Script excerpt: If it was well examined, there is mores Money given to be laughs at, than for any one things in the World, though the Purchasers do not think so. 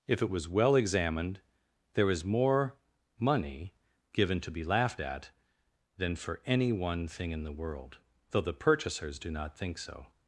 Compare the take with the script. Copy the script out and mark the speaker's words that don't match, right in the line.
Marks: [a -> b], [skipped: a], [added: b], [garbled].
If it was well examined, there is [mores -> more] Money given to be [laughs -> laughed] at, than for any one [things -> thing] in the World, though the Purchasers do not think so.